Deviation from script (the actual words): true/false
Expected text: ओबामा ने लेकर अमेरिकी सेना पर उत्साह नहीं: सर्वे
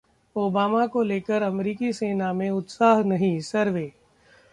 true